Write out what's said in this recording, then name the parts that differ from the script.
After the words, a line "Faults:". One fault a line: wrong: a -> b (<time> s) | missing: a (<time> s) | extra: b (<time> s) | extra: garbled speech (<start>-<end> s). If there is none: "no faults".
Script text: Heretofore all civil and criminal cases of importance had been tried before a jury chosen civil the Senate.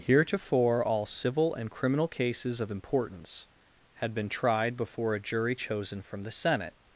Heretofore all civil and criminal cases of importance had been tried before a jury chosen from the Senate.
Faults:
wrong: civil -> from (6.0 s)